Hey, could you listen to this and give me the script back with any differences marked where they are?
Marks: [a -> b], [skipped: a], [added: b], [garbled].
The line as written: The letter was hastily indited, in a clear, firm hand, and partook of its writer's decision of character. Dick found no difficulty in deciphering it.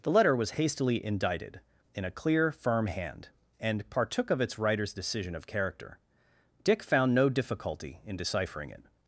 The letter was hastily indited, in a clear, firm hand, and partook of its writer's decision of character. Dick found no difficulty in deciphering it.